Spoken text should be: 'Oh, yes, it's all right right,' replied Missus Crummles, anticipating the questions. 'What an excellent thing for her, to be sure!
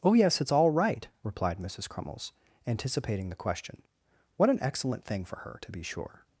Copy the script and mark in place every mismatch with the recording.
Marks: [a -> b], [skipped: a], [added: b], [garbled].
'Oh, yes, it's all right [skipped: right,'] replied Missus Crummles, anticipating the [questions. -> question] 'What an excellent thing for her, to be sure!